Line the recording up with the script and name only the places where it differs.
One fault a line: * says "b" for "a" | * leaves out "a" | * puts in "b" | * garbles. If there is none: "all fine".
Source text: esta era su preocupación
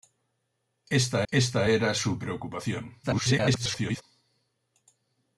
* puts in "esta"
* garbles